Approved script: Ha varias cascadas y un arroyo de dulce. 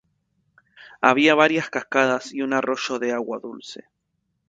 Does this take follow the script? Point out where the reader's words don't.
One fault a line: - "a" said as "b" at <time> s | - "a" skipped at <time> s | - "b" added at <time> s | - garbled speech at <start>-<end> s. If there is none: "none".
- "Ha" said as "Había" at 1.0 s
- "agua" added at 3.1 s